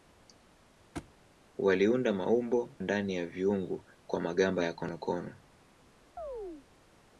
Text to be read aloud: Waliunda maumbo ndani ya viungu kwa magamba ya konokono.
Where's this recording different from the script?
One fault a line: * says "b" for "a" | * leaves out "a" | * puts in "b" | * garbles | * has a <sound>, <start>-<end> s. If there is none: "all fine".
* has a thud, 0.9-1.1 s
* has a chirp, 6.2-6.7 s